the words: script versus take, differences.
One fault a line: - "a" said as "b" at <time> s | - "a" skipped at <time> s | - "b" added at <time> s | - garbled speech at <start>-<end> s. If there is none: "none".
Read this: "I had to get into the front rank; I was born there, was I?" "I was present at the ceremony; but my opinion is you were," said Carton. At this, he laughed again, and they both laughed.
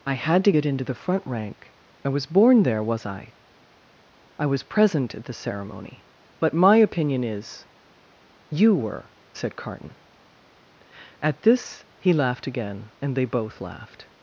none